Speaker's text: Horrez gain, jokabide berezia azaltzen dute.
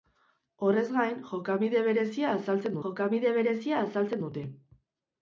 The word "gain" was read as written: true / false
true